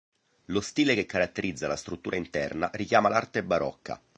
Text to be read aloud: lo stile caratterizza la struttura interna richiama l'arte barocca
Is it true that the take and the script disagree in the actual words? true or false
true